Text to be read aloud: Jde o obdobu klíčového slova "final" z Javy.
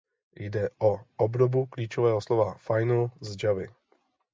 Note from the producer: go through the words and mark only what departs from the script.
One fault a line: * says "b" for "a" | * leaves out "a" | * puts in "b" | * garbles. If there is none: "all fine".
all fine